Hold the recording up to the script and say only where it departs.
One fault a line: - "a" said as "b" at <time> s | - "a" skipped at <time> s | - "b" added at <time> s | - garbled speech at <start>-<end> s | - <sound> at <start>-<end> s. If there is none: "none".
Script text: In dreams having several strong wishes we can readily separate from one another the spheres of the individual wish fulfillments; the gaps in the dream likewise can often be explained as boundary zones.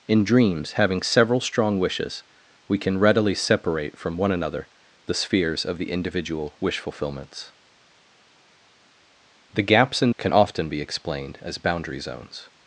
- "the dream likewise" skipped at 10.1 s